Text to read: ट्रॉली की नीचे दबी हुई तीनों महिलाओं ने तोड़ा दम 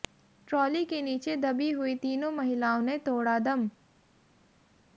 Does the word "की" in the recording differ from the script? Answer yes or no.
yes